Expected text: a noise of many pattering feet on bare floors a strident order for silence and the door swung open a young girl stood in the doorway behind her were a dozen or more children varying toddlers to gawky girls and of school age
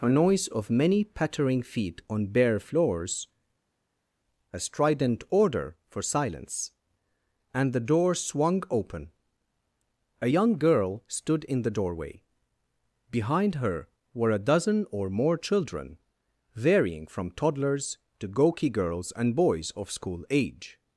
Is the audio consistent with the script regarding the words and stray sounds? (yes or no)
no